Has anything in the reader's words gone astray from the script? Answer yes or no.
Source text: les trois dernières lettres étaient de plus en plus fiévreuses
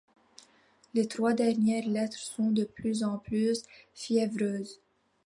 yes